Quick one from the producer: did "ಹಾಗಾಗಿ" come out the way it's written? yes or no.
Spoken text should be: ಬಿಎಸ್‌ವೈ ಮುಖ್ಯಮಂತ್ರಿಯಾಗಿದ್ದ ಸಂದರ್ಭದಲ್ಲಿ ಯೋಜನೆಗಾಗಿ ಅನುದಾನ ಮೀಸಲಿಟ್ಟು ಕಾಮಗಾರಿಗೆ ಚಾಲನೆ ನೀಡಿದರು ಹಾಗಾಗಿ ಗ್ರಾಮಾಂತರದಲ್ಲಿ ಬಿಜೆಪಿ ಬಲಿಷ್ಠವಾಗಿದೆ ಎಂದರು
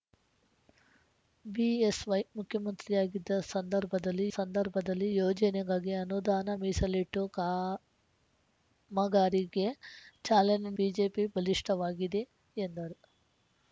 no